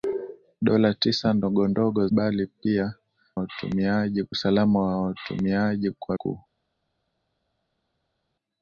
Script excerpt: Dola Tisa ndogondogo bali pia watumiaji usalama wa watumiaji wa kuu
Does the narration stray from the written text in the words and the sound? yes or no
no